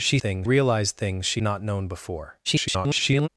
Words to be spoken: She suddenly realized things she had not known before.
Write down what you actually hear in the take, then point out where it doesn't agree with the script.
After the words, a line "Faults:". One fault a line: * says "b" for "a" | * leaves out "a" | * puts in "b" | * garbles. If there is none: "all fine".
She things realized things she not known before. [garbled]
Faults:
* says "things" for "suddenly"
* leaves out "had"
* garbles